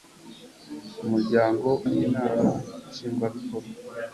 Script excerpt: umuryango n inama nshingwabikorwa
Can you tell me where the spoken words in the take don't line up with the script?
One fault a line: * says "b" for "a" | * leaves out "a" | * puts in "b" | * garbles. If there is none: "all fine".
all fine